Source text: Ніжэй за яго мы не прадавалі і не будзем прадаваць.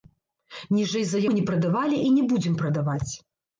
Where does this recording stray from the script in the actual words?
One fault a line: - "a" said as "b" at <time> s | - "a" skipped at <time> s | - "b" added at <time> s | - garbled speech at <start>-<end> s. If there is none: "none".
- "яго" skipped at 1.2 s